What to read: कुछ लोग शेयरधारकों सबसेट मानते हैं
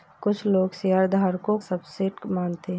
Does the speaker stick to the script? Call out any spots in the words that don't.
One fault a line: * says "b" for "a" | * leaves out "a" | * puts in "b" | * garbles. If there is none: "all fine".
all fine